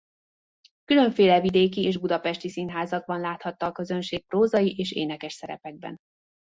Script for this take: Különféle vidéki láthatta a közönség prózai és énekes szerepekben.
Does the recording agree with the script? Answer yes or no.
no